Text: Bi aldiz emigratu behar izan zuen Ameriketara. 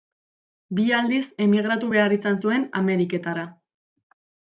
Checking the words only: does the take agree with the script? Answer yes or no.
yes